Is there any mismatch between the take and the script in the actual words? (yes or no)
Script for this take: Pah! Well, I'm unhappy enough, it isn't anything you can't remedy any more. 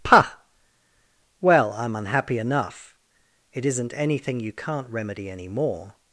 no